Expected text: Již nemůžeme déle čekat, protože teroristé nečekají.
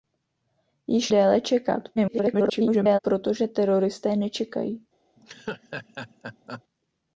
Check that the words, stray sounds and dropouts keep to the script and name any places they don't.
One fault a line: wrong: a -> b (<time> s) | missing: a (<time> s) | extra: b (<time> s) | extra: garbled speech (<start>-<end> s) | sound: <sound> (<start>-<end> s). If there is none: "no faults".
missing: nemůžeme (1.1 s)
extra: garbled speech (2.0-3.0 s)
sound: laugh (5.2-6.6 s)